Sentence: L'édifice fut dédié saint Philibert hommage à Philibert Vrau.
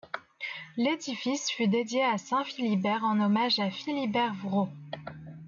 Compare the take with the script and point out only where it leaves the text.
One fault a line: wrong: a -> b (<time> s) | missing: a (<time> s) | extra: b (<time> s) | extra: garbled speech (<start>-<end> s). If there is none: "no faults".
extra: à (2.0 s)
extra: en (3.0 s)